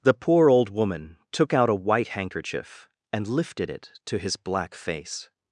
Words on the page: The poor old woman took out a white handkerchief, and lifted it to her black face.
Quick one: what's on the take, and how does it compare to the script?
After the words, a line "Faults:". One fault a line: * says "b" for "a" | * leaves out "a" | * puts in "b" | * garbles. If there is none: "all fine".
The poor old woman took out a white handkerchief, and lifted it to his black face.
Faults:
* says "his" for "her"